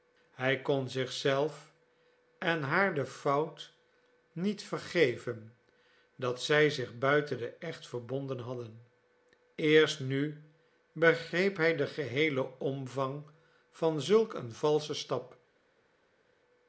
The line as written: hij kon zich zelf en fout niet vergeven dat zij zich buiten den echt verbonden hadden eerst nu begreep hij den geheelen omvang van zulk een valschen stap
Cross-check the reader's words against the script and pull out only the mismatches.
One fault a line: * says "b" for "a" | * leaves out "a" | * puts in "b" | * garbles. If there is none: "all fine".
* puts in "haar de"